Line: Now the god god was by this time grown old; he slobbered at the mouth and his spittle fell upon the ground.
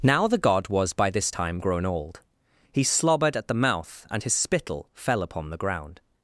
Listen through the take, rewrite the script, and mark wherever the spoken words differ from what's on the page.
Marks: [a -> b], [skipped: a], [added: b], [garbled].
Now the god [skipped: god] was by this time grown old; he slobbered at the mouth and his spittle fell upon the ground.